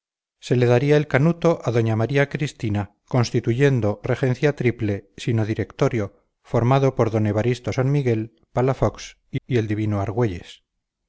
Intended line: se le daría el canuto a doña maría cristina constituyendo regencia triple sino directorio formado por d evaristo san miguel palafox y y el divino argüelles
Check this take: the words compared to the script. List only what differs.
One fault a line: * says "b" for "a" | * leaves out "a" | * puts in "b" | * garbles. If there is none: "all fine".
all fine